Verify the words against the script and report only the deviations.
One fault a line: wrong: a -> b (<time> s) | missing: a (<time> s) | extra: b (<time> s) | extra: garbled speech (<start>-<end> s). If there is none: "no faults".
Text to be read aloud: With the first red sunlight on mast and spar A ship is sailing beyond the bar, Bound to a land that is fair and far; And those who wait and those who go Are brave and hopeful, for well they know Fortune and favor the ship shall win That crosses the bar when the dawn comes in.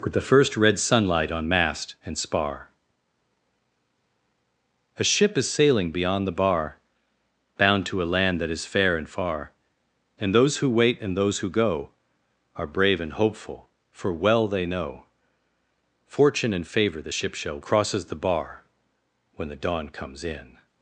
missing: win That (17.6 s)